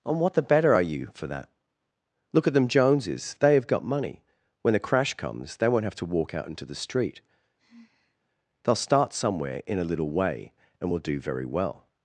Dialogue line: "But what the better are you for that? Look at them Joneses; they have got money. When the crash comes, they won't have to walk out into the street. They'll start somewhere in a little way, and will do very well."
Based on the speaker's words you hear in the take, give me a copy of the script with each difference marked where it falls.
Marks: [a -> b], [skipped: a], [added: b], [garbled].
["But -> And] what the better are you for that? Look at them Joneses; they have got money. When the crash comes, they won't have to walk out into the street. They'll start somewhere in a little way, and will do very well."